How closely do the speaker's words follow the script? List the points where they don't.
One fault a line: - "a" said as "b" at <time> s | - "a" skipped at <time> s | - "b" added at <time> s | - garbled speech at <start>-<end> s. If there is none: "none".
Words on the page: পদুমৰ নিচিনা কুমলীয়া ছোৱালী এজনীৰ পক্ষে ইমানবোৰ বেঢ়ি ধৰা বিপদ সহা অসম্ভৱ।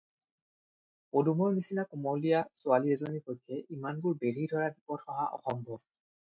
none